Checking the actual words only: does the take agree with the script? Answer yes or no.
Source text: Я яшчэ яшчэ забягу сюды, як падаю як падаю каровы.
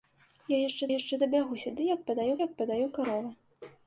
yes